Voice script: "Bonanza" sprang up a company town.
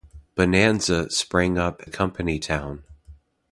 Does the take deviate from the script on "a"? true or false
false